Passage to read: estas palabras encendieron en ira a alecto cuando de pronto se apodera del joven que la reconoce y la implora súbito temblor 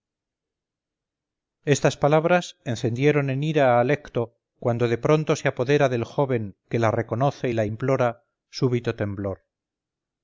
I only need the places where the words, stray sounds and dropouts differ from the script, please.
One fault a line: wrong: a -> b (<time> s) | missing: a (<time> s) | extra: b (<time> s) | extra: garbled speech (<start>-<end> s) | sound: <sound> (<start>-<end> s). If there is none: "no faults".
no faults